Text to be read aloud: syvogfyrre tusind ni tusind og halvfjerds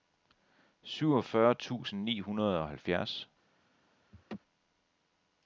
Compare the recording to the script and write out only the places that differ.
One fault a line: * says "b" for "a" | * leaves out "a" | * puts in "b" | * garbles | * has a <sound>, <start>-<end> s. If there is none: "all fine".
* says "hundrede" for "tusind"
* has a laugh, 4.1-4.4 s